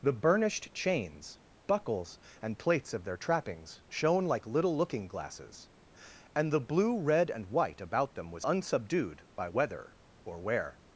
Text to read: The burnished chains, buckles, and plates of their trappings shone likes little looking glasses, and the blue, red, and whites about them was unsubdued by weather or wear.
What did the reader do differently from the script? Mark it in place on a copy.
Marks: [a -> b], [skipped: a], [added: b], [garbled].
The burnished chains, buckles, and plates of their trappings shone [likes -> like] little looking glasses, and the blue, red, and [whites -> white] about them was unsubdued by weather or wear.